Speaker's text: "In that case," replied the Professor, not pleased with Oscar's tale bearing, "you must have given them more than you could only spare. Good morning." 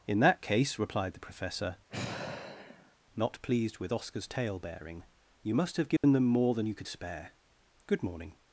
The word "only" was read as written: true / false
false